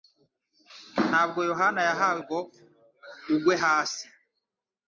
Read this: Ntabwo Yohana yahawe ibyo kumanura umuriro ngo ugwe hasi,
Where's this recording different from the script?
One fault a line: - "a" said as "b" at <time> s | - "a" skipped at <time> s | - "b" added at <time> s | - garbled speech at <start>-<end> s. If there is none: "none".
- "ibyo kumanura umuriro" skipped at 2.2 s